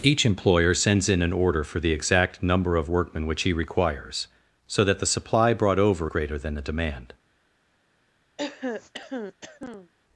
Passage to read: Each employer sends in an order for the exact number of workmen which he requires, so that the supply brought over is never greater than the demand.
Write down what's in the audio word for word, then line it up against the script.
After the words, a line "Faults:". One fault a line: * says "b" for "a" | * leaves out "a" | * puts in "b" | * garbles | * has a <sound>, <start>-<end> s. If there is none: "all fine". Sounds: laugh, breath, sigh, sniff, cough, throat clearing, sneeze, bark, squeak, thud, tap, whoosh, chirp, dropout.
Each employer sends in an order for the exact number of workmen which he requires, so that the supply brought over greater than the demand.
Faults:
* leaves out "is never"
* has a throat clearing, 8.4-9.9 s